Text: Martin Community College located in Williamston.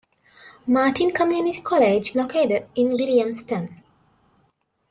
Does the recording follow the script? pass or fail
pass